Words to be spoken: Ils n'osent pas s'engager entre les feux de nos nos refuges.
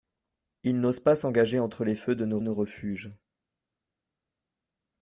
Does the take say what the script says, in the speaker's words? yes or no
yes